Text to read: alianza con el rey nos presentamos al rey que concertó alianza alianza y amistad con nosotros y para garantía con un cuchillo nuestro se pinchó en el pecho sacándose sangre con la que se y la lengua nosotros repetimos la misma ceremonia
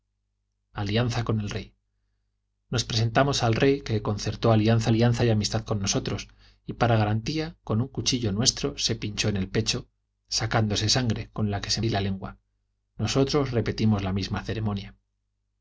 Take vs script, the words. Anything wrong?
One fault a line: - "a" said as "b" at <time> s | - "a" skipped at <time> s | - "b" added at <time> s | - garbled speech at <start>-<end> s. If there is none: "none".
none